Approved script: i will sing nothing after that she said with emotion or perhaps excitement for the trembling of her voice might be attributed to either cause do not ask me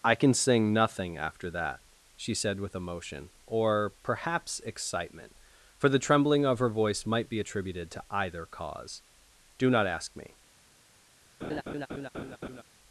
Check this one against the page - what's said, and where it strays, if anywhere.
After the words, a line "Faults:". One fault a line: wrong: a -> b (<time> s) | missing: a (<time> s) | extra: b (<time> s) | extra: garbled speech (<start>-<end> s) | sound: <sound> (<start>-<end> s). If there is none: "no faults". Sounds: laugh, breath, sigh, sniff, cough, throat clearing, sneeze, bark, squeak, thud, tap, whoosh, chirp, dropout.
i can sing nothing after that she said with emotion or perhaps excitement for the trembling of her voice might be attributed to either cause do not ask me
Faults:
wrong: will -> can (0.1 s)
sound: laugh (11.4-12.6 s)